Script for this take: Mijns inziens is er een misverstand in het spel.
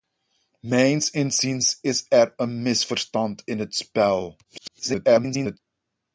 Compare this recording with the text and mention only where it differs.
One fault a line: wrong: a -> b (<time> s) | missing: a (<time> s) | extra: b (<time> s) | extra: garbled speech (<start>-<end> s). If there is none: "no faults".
extra: garbled speech (4.4-5.6 s)